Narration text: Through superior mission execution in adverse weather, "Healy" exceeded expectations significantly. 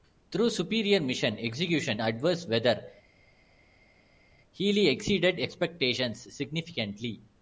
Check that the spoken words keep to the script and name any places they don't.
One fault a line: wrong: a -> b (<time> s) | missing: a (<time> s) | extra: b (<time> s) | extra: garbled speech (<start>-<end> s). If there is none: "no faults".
missing: in (2.0 s)